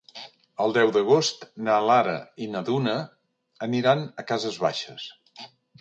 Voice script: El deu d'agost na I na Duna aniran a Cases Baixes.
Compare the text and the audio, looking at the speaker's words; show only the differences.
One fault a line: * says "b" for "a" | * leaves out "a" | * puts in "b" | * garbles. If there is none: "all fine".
* puts in "Lara"